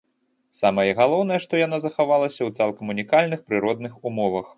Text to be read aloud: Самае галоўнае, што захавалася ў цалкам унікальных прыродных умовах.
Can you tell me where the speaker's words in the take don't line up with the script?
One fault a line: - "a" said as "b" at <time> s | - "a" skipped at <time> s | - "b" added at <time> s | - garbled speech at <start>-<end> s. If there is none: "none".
- "яна" added at 1.6 s